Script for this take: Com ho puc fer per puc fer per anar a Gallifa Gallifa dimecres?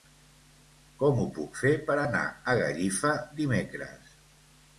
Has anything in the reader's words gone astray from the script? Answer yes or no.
yes